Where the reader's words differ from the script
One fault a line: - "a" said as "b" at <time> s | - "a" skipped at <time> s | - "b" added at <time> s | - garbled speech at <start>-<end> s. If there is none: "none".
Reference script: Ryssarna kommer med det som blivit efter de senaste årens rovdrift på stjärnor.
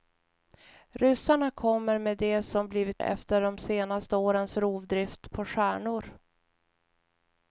none